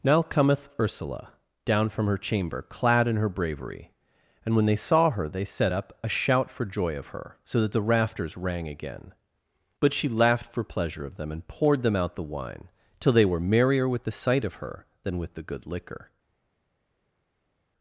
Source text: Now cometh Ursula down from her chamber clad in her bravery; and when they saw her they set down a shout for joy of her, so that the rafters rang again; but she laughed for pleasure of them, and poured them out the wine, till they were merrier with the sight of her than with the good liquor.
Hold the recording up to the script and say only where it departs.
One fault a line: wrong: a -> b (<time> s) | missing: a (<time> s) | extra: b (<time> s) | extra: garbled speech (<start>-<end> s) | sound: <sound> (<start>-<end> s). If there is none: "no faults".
wrong: down -> up (5.7 s)